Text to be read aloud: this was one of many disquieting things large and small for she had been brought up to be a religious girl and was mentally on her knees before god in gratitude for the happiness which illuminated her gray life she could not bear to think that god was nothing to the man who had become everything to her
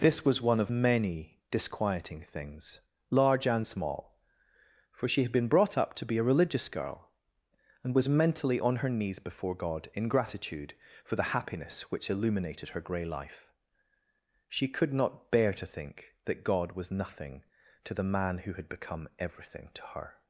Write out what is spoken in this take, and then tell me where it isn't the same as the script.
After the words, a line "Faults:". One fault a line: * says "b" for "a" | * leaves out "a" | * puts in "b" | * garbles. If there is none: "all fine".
this was one of many disquieting things large and small for she had been brought up to be a religious girl and was mentally on her knees before god in gratitude for the happiness which illuminated her gray life she could not bear to think that god was nothing to the man who had become everything to her
Faults:
all fine